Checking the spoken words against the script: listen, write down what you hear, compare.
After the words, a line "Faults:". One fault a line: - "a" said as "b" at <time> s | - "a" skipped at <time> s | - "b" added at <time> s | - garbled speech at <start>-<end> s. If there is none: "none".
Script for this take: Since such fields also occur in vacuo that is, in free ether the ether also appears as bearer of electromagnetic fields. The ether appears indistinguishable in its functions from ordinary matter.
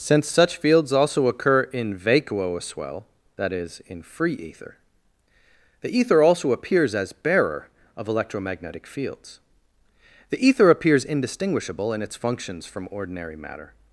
Since such fields also occur in vacuo as well that is, in free ether the ether also appears as bearer of electromagnetic fields. The ether appears indistinguishable in its functions from ordinary matter.
Faults:
- "as well" added at 2.6 s